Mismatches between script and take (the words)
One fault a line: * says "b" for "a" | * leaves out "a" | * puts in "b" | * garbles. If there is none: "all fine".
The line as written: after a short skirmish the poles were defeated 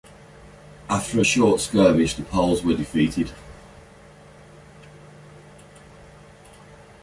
all fine